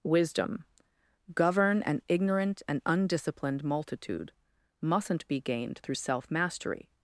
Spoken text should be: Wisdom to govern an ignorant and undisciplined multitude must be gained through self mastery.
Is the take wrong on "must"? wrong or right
wrong